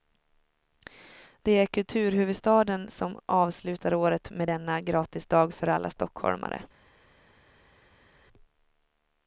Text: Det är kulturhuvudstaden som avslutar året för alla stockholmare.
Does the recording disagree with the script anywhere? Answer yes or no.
yes